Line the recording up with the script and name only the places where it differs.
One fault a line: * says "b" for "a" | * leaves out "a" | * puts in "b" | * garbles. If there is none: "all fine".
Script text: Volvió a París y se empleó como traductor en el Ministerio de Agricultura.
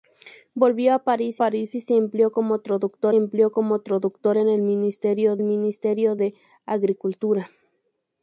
* puts in "París"
* puts in "empleó como traductor"
* puts in "Ministerio"